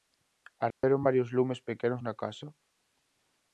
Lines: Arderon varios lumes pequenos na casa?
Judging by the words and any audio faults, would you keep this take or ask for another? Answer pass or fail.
fail